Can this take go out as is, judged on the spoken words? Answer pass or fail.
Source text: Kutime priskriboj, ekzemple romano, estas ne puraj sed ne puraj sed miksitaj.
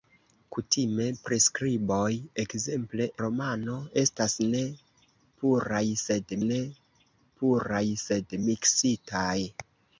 pass